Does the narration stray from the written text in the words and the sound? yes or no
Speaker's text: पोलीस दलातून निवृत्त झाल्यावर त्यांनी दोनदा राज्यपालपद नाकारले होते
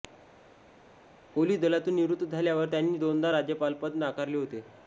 no